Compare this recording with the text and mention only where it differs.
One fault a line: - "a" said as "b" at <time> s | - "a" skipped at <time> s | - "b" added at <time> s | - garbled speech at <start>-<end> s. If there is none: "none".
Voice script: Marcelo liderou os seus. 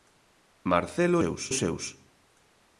- "liderou" said as "seus" at 1.2 s